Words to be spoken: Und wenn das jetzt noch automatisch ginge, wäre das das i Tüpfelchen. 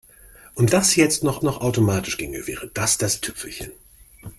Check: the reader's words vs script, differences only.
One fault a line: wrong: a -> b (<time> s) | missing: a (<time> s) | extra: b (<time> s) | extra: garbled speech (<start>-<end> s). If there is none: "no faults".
missing: wenn (0.7 s)
extra: noch (1.4 s)
missing: i (3.2 s)